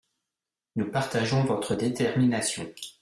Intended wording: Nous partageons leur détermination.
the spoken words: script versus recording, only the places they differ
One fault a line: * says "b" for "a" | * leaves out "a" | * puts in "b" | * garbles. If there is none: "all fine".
* says "votre" for "leur"